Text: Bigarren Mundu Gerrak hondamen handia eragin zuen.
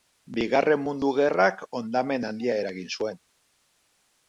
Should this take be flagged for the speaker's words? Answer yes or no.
no